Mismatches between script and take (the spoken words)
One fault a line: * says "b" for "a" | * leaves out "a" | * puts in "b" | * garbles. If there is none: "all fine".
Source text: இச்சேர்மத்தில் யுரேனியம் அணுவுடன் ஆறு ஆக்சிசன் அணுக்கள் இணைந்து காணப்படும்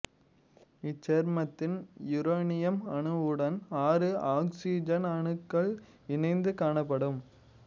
all fine